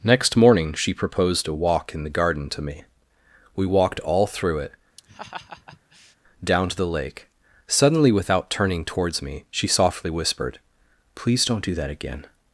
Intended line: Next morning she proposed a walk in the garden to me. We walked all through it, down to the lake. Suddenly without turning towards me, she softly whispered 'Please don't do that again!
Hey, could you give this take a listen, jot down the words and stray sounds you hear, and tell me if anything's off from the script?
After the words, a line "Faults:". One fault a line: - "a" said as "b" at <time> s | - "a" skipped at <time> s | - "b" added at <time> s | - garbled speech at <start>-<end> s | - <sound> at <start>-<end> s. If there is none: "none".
Next morning she proposed a walk in the garden to me. We walked all through it, down to the lake. Suddenly without turning towards me, she softly whispered 'Please don't do that again!
Faults:
- laugh at 5.0-6.2 s